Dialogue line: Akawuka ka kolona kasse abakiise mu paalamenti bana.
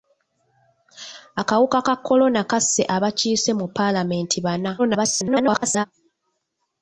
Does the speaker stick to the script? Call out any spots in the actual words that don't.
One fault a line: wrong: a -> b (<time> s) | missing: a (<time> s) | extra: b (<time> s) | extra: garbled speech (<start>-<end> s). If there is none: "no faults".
extra: garbled speech (4.8-5.9 s)